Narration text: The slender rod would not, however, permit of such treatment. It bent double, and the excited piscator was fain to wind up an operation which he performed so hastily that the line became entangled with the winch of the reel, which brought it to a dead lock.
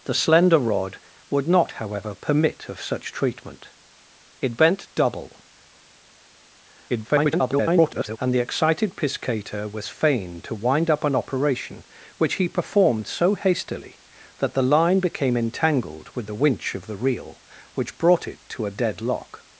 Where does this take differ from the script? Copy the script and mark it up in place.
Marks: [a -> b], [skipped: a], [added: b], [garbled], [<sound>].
The slender rod would not, however, permit of such treatment. It bent double, [garbled] and the excited piscator was fain to wind up an operation which he performed so hastily that the line became entangled with the winch of the reel, which brought it to a dead lock.